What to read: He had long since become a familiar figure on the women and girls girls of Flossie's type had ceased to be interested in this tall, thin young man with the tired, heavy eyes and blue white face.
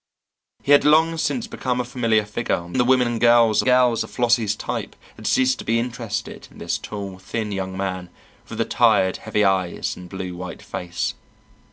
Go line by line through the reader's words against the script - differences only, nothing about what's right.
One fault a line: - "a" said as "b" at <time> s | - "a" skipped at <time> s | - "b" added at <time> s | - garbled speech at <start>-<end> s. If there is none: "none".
none